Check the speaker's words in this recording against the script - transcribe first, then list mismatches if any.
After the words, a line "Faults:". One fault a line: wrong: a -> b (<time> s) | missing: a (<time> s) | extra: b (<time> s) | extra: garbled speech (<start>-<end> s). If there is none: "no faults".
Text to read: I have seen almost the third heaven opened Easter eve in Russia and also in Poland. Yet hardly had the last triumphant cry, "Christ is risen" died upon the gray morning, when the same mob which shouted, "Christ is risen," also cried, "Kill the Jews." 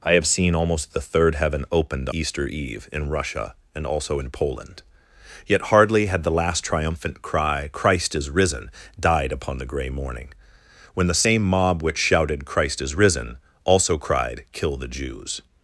I have seen almost the third heaven opened Easter eve in Russia and also in Poland. Yet hardly had the last triumphant cry, "Christ is risen" died upon the gray morning, when the same mob which shouted, "Christ is risen," also cried, "Kill the Jews."
Faults:
no faults